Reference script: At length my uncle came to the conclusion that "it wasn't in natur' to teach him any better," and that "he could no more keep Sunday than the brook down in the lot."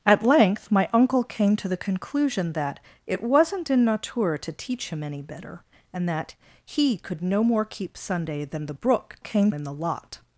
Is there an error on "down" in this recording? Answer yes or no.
yes